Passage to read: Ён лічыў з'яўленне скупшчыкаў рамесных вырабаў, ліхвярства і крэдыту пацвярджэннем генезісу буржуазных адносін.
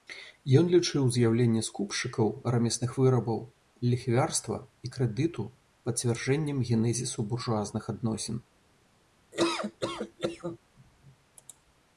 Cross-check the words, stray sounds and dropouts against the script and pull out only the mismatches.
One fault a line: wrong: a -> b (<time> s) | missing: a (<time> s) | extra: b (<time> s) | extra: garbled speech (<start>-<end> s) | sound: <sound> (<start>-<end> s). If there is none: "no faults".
sound: laugh (9.3-10.6 s)